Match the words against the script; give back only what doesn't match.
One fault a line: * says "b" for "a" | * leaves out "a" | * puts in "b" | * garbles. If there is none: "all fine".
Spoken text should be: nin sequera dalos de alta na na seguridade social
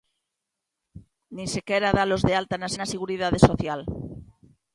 all fine